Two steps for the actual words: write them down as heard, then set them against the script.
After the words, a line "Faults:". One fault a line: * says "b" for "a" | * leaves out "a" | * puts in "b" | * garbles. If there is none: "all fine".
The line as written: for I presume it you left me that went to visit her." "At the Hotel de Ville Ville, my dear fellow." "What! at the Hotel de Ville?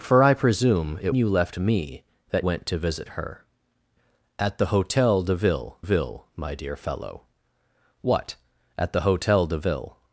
for I presume it you left me that went to visit her." "At the Hotel de Ville Ville, my dear fellow." "What! at the Hotel de Ville?
Faults:
all fine